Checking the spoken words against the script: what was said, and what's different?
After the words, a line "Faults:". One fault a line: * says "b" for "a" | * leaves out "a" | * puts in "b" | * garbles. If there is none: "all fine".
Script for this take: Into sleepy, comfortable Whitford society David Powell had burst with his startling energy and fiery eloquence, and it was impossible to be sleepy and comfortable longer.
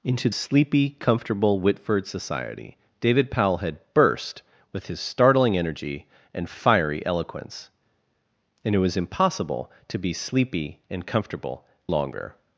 Into sleepy, comfortable Whitford society David Powell had burst with his startling energy and fiery eloquence, and it was impossible to be sleepy and comfortable longer.
Faults:
all fine